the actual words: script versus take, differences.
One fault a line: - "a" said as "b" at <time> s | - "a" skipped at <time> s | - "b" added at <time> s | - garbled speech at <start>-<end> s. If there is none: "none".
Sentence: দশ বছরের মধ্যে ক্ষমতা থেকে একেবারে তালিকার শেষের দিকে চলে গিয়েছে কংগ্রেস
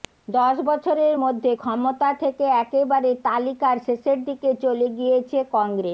none